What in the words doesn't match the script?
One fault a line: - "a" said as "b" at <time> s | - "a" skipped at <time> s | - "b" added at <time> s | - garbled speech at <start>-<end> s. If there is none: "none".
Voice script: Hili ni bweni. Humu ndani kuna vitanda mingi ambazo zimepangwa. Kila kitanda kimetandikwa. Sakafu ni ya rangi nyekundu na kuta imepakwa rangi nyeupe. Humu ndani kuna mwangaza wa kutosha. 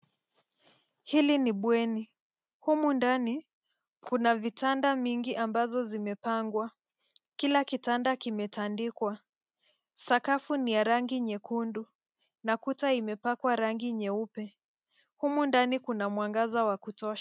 none